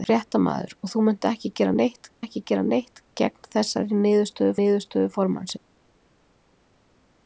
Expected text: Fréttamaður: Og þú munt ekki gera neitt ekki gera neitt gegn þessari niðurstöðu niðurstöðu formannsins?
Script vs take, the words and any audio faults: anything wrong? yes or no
no